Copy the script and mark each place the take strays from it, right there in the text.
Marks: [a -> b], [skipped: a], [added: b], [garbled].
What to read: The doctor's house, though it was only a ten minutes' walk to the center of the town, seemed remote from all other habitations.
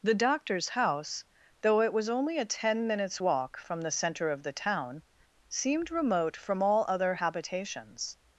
The doctor's house, though it was only a ten minutes' walk [to -> from] the center of the town, seemed remote from all other habitations.